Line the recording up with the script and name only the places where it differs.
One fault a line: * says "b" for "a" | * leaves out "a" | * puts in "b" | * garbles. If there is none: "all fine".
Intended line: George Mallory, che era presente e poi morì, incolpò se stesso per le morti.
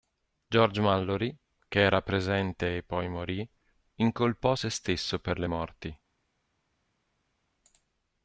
all fine